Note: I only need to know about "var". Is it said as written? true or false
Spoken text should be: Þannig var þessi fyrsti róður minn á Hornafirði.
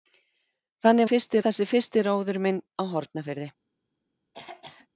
false